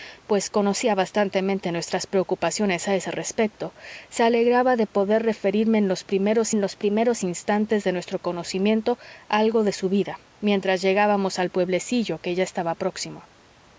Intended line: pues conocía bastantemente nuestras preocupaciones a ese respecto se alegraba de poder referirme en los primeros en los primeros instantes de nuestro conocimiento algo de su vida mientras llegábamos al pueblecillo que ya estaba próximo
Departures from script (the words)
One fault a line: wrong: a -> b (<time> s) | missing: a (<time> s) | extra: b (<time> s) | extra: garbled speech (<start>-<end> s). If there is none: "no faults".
no faults